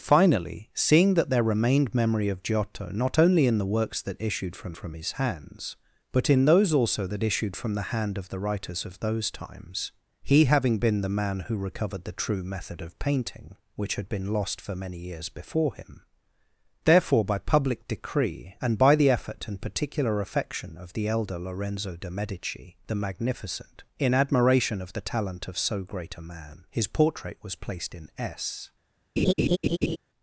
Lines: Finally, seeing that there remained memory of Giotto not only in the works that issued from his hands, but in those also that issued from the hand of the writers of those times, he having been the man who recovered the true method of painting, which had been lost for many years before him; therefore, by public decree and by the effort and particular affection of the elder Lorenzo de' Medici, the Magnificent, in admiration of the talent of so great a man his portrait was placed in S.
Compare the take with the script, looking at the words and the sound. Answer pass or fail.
fail